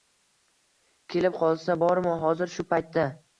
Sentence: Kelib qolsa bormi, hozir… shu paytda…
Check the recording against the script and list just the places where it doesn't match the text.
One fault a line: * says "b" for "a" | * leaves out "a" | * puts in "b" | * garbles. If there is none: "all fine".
all fine